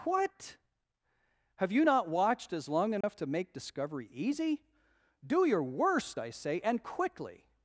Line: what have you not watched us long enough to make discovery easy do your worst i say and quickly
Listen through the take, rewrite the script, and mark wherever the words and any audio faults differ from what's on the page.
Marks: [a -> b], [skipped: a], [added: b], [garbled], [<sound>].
what have you not watched [us -> as] long enough [dropout] to make discovery easy do your worst i say and quickly